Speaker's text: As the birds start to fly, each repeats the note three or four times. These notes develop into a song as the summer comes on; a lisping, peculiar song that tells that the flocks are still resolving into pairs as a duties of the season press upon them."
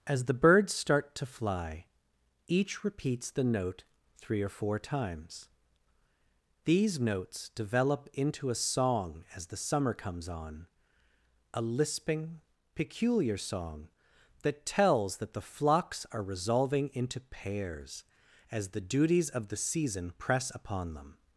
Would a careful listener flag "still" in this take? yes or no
yes